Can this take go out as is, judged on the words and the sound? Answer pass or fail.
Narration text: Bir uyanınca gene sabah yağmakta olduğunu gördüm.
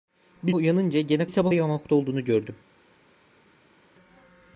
pass